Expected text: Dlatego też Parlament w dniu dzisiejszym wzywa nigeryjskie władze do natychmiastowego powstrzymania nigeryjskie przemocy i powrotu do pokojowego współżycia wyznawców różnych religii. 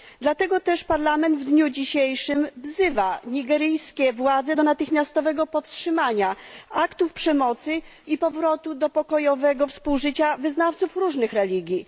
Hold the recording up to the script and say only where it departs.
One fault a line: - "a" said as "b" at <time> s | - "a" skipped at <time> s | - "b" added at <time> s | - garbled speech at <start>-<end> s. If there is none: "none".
- "nigeryjskie" said as "aktów" at 6.7 s